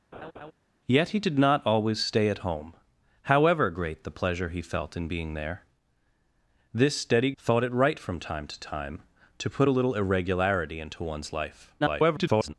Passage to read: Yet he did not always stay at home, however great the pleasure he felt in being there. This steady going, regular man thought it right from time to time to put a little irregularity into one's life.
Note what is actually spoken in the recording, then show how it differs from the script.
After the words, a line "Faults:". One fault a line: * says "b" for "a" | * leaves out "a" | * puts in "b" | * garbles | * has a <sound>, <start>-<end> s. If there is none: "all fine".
Yet he did not always stay at home, however great the pleasure he felt in being there. This steady thought it right from time to time to put a little irregularity into one's life. [garbled]
Faults:
* has a laugh, 0.1-0.5 s
* leaves out "going regular man"
* garbles